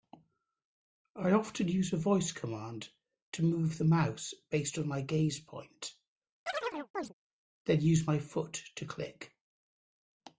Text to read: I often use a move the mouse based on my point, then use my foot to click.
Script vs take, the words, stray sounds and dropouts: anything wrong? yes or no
yes